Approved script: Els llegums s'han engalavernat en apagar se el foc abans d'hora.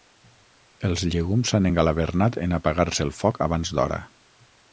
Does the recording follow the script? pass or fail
pass